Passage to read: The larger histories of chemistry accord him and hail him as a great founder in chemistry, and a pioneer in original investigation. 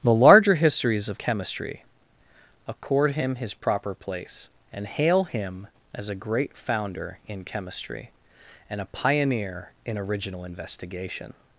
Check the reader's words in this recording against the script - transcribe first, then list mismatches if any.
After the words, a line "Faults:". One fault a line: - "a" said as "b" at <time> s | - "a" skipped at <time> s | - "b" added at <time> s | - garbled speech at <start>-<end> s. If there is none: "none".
The larger histories of chemistry accord him his proper place, and hail him as a great founder in chemistry, and a pioneer in original investigation.
Faults:
- "his proper place" added at 3.4 s